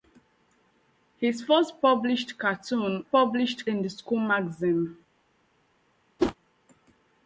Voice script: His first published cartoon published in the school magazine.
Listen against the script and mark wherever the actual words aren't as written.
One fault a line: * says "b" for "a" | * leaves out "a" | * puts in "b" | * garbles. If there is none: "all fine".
all fine